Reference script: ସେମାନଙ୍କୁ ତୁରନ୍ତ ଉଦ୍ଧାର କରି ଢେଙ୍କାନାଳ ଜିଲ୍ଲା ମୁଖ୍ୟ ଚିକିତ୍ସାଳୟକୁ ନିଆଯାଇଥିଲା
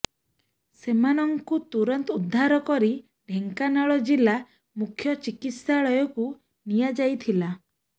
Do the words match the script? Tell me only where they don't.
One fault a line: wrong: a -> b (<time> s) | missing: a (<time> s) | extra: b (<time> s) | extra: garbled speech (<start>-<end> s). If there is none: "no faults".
no faults